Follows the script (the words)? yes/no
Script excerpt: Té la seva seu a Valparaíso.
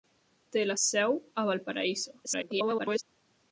no